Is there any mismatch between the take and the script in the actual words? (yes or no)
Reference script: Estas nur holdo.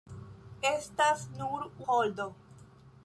no